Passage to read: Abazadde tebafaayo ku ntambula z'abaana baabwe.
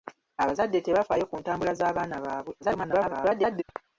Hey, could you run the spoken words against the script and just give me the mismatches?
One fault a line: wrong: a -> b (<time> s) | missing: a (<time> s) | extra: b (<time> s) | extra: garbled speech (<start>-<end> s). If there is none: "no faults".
extra: garbled speech (2.6-3.6 s)